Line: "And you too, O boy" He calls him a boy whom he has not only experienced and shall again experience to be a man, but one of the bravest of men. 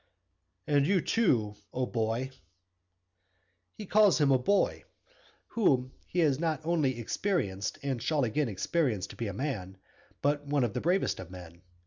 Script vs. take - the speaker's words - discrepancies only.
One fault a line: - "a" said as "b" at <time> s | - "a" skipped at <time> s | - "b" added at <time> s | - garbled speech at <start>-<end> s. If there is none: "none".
none